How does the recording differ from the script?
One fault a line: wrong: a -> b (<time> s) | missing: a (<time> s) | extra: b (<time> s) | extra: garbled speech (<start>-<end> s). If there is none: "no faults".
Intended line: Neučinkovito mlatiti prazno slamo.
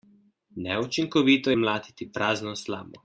no faults